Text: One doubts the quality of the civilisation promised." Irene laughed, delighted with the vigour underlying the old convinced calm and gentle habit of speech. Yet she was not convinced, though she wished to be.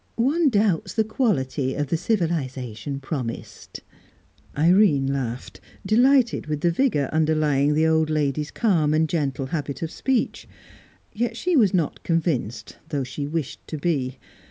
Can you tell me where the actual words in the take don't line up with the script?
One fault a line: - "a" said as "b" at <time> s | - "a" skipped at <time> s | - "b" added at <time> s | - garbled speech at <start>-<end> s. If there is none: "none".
- "convinced" said as "lady's" at 8.1 s